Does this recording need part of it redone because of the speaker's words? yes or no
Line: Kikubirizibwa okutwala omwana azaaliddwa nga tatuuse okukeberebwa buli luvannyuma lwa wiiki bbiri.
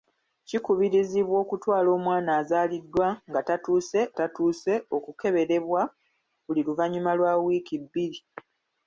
yes